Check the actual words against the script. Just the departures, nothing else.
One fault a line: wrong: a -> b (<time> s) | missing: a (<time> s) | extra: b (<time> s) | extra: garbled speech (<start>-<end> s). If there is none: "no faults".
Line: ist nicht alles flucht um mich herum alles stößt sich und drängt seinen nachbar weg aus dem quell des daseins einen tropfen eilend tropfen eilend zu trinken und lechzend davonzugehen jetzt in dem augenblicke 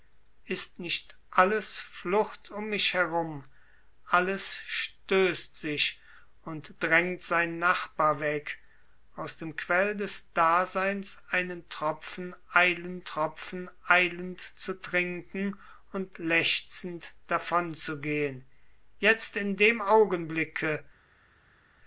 no faults